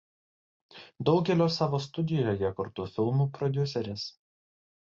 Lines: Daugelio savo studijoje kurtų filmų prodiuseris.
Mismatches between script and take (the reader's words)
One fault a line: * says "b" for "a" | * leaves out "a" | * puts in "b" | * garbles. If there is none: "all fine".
all fine